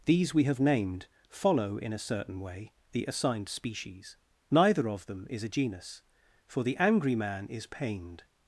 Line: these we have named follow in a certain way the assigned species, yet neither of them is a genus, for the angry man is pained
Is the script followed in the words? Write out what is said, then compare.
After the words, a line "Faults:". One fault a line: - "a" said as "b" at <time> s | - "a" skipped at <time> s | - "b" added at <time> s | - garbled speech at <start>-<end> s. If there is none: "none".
these we have named follow in a certain way the assigned species, neither of them is a genus, for the angry man is pained
Faults:
- "yet" skipped at 4.2 s